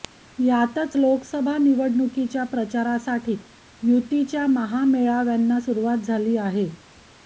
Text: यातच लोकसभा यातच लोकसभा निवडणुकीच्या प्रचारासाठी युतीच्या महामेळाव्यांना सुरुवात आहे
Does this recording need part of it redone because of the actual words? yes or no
yes